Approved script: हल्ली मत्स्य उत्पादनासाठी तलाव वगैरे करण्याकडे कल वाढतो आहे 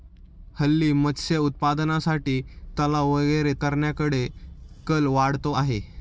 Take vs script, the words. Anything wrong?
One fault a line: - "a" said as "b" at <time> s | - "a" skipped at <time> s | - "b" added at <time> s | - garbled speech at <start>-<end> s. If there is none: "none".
none